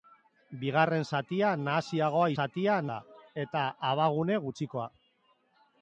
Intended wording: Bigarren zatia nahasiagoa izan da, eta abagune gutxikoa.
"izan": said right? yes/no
no